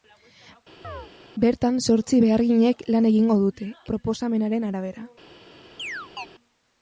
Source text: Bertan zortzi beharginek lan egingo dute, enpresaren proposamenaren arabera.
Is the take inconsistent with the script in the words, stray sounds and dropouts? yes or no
yes